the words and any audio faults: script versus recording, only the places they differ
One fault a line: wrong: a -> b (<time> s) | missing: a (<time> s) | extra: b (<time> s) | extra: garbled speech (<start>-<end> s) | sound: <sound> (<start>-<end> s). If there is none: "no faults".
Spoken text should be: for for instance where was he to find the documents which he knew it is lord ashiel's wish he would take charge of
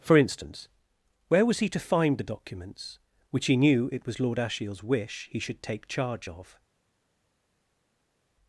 missing: for (0.2 s)
wrong: is -> was (4.1 s)
wrong: would -> should (5.4 s)